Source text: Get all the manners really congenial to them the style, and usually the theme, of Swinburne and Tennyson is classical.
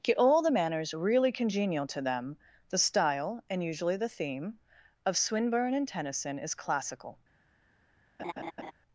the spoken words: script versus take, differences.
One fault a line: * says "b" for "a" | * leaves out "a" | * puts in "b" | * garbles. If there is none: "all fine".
all fine